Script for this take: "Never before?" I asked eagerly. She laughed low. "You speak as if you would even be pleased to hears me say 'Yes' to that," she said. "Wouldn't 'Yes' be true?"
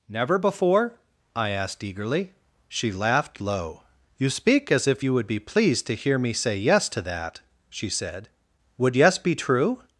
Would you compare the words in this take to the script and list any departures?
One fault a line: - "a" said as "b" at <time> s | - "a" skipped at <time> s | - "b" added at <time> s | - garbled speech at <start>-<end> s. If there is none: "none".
- "even" skipped at 5.3 s
- "hears" said as "hear" at 5.9 s
- "Wouldn't" said as "Would" at 8.8 s